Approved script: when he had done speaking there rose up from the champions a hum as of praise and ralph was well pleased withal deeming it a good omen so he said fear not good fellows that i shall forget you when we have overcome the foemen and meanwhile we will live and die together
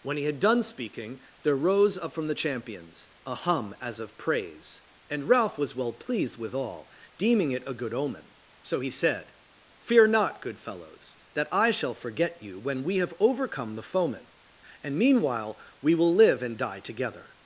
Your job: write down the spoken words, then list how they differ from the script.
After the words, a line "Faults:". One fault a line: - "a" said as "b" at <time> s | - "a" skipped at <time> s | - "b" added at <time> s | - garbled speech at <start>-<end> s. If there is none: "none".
when he had done speaking there rose up from the champions a hum as of praise and ralph was well pleased withal deeming it a good omen so he said fear not good fellows that i shall forget you when we have overcome the foemen and meanwhile we will live and die together
Faults:
none